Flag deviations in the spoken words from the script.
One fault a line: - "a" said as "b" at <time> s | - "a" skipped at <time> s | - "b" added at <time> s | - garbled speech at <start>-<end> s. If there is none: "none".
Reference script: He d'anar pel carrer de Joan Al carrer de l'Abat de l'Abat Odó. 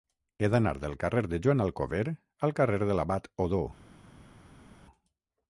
- "pel" said as "del" at 0.8 s
- "Alcover" added at 1.7 s
- "de l'Abat" skipped at 3.3 s